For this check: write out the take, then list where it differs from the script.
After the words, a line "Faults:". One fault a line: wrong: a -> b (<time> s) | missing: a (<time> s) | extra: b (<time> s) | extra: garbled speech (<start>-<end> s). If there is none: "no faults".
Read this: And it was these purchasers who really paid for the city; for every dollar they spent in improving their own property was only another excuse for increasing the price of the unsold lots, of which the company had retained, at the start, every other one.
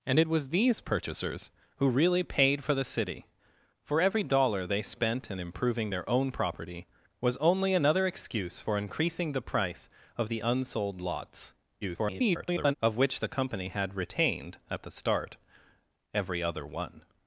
And it was these purchasers who really paid for the city; for every dollar they spent in improving their own property was only another excuse for increasing the price of the unsold lots, [garbled] of which the company had retained, at the start, every other one.
Faults:
extra: garbled speech (11.8-12.7 s)